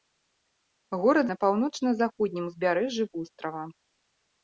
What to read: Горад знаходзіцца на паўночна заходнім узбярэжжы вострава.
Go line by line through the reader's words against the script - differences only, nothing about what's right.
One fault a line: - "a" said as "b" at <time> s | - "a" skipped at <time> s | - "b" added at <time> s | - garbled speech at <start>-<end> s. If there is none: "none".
- "знаходзіцца" skipped at 1.3 s